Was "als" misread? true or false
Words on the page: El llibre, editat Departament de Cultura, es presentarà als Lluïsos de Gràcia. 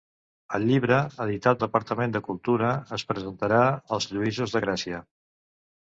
false